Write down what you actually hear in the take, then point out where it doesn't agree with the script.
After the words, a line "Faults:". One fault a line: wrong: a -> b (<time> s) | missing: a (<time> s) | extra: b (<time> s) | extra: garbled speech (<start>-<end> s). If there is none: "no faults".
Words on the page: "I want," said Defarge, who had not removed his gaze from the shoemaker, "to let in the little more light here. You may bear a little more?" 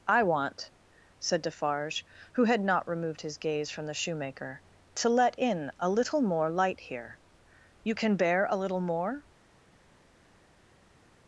"I want," said Defarge, who had not removed his gaze from the shoemaker, "to let in a little more light here. You can bear a little more?"
Faults:
wrong: the -> a (5.8 s)
wrong: may -> can (7.9 s)